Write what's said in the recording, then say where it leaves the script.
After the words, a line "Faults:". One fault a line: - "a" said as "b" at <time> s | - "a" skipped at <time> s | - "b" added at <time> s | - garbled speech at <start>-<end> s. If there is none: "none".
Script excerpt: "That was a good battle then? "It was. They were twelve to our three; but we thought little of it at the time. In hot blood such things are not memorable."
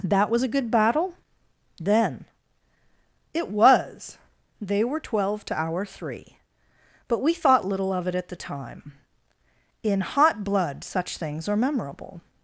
"That was a good battle then? "It was. They were twelve to our three; but we thought little of it at the time. In hot blood such things are memorable."
Faults:
- "not" skipped at 11.6 s